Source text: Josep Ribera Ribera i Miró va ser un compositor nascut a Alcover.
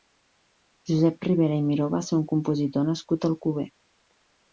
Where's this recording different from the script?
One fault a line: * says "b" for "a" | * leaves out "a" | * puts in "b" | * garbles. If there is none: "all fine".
* leaves out "Ribera"